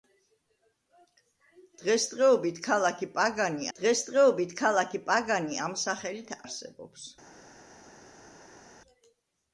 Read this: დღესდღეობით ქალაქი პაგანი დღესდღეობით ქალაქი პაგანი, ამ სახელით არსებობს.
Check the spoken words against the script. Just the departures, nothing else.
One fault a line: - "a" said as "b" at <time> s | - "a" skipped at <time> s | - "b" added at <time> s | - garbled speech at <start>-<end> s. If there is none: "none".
none